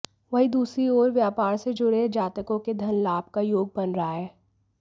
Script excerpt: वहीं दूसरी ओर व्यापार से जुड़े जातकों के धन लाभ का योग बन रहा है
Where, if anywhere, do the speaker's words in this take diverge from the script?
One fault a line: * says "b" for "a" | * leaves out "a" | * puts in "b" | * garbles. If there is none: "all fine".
all fine